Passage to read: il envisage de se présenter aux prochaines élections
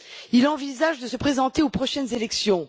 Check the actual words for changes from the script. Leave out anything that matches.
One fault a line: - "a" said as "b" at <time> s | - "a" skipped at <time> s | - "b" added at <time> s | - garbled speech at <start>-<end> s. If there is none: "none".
none